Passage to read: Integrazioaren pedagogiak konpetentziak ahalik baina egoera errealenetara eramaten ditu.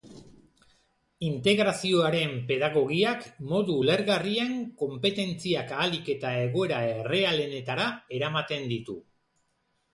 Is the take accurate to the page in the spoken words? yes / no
no